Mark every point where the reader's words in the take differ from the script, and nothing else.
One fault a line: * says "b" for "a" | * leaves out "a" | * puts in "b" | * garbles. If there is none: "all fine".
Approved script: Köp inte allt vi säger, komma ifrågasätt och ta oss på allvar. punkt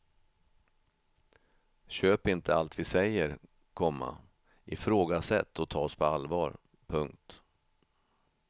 all fine